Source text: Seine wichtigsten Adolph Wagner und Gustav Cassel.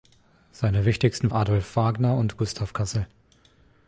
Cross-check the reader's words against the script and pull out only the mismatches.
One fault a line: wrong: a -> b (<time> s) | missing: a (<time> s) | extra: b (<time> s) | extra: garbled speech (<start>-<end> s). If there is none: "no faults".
no faults